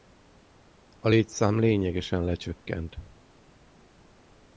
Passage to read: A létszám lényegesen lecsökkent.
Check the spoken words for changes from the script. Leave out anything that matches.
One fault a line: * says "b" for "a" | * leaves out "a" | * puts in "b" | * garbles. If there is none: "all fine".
all fine